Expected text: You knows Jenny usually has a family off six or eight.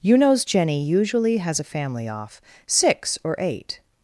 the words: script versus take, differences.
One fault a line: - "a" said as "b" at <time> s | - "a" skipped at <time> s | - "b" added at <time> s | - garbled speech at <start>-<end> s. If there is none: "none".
none